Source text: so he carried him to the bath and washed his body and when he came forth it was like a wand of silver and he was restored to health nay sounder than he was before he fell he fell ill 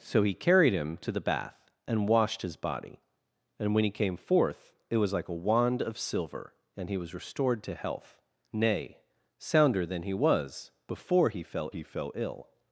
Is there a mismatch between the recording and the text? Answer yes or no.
no